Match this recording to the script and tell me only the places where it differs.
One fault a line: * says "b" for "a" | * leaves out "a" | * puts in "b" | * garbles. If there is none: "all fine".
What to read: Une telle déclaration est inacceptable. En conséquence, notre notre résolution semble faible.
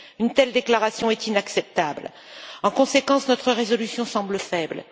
* leaves out "notre"